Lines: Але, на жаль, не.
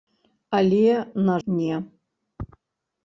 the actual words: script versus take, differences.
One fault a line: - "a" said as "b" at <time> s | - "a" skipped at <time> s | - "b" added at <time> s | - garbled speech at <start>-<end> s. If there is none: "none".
- "жаль" skipped at 1.4 s